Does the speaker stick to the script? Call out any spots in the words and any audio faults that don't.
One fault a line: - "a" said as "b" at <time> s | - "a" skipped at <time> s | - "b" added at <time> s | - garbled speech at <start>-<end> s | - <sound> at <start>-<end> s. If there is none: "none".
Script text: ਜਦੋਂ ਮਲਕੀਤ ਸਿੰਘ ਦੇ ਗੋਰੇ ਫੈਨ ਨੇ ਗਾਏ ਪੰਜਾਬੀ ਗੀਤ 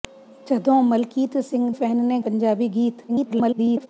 - "ਦੇ ਗੋਰੇ" skipped at 1.7 s
- "ਗਾਏ" skipped at 2.2 s
- garbled speech at 3.1-3.9 s